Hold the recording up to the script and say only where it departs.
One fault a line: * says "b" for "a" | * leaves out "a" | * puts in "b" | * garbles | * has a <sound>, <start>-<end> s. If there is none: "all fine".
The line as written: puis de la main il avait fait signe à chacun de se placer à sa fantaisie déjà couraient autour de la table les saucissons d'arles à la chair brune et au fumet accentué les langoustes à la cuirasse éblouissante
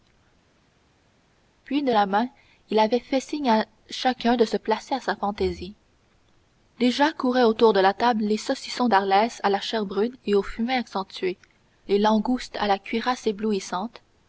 all fine